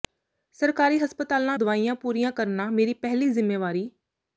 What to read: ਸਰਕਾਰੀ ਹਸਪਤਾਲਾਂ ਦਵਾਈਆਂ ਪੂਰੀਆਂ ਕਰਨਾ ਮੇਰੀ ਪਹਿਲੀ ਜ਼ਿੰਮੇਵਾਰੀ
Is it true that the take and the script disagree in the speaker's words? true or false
false